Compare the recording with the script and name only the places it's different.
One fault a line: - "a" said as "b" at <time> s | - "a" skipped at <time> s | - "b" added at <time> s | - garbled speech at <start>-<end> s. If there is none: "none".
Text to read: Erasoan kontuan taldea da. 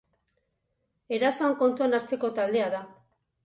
- "hartzeko" added at 2.0 s